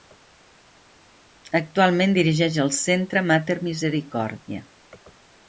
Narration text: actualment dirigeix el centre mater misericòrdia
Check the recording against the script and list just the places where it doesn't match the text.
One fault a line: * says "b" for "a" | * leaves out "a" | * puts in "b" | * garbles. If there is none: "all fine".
all fine